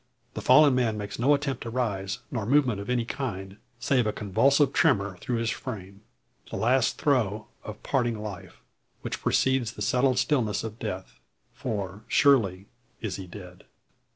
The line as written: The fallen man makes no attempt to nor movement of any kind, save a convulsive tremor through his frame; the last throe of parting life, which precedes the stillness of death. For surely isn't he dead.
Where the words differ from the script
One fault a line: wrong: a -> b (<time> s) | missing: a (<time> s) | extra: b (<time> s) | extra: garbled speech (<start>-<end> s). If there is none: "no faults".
extra: rise (1.7 s)
extra: settled (9.8 s)
wrong: isn't -> is (13.0 s)